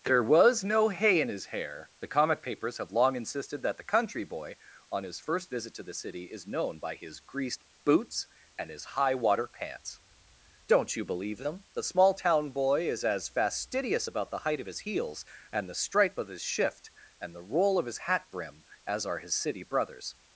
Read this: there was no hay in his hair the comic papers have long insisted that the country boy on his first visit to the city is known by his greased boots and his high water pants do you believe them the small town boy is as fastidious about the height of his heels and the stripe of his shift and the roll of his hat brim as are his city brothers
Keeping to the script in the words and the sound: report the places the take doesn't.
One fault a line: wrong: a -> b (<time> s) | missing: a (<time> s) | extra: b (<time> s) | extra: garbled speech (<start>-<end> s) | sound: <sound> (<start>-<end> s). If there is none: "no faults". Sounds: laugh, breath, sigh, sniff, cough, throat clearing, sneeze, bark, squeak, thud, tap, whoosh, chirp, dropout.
wrong: do -> don't (10.7 s)